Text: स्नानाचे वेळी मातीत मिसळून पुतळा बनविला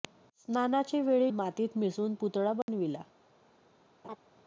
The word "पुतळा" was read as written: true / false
true